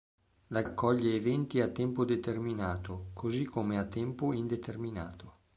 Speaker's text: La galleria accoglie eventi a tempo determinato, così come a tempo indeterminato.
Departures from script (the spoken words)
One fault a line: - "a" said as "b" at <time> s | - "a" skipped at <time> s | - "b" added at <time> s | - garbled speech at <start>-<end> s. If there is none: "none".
- "galleria" skipped at 0.6 s